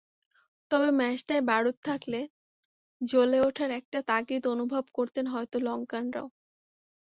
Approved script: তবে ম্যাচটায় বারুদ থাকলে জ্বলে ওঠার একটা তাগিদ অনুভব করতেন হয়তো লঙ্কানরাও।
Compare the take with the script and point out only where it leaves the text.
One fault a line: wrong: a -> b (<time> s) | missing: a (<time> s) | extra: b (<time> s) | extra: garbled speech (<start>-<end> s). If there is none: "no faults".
no faults